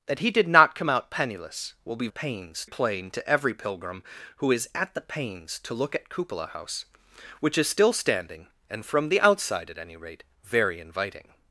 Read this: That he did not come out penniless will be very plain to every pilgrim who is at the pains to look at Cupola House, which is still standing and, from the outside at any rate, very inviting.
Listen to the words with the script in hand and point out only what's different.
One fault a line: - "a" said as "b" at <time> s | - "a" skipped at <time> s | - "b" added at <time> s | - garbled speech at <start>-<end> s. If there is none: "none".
- "very" said as "pains" at 2.1 s